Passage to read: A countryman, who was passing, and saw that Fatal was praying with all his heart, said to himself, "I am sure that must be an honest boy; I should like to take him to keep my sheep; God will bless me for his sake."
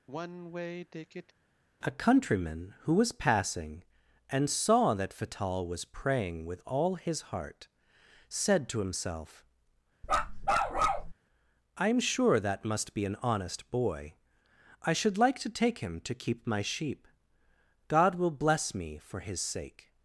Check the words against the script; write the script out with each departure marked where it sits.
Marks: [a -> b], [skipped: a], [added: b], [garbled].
A countryman, who was passing, and saw that Fatal was praying with all his heart, said to himself, "I am sure that must be an honest boy; I should like to take him to keep my sheep; God will bless me for his sake."